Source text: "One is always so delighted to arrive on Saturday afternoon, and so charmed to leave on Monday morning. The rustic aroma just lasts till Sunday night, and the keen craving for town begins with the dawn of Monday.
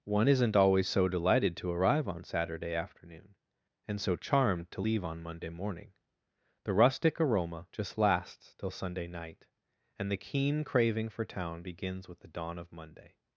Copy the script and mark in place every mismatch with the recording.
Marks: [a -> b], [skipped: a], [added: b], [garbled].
"One [is -> isn't] always so delighted to arrive on Saturday afternoon, and so charmed to leave on Monday morning. The rustic aroma just lasts till Sunday night, and the keen craving for town begins with the dawn of Monday.